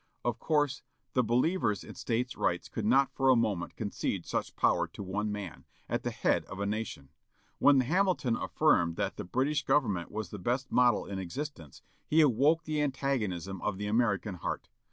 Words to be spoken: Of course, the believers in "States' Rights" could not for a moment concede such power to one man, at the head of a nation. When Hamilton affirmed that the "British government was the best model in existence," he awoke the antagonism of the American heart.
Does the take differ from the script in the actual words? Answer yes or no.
no